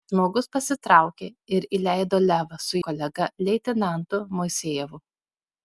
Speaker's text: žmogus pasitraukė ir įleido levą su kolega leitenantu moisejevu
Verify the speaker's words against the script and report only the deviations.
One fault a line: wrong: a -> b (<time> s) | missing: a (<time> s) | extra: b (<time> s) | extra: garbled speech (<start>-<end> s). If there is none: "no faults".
no faults